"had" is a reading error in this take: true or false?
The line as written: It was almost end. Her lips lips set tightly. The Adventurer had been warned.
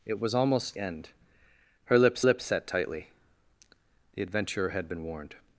false